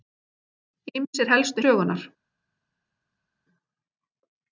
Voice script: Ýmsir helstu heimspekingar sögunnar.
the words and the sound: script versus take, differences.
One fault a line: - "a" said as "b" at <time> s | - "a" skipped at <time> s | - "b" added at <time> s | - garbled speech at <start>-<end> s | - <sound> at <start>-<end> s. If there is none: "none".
- "heimspekingar" skipped at 1.6 s